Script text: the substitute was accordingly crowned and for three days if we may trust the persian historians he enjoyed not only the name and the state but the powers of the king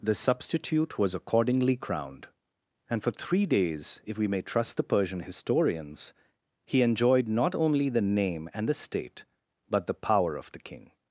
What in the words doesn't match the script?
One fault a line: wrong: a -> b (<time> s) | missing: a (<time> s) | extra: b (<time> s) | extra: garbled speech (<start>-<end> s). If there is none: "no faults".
wrong: powers -> power (9.9 s)